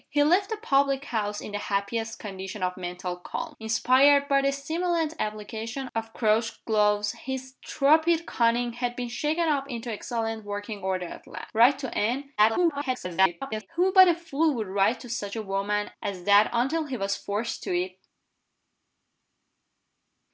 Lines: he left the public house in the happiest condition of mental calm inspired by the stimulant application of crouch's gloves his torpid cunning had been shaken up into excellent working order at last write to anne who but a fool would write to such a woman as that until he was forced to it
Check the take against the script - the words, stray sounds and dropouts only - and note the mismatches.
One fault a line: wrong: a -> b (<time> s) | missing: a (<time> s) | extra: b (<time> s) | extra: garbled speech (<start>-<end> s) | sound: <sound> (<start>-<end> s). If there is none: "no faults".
extra: garbled speech (12.4-13.7 s)